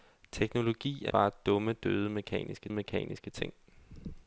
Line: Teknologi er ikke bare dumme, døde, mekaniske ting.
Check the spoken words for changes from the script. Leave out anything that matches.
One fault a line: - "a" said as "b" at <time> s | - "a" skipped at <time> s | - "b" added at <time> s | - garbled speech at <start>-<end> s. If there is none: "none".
- "ikke" skipped at 1.1 s
- "mekaniske" added at 2.7 s